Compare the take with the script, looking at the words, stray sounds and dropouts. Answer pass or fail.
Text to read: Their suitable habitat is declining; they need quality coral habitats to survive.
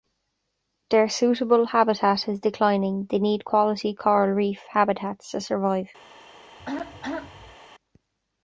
fail